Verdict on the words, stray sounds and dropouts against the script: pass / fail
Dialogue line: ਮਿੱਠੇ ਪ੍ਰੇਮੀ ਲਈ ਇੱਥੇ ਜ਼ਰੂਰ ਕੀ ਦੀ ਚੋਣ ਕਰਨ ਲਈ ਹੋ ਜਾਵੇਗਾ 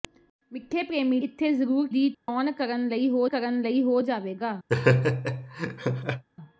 fail